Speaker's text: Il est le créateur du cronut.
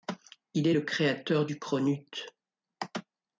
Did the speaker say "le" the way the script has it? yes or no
yes